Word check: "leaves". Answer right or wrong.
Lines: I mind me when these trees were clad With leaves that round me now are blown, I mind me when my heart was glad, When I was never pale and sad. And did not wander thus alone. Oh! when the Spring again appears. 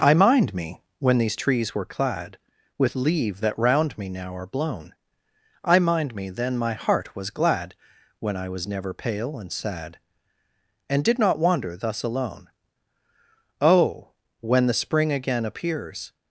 wrong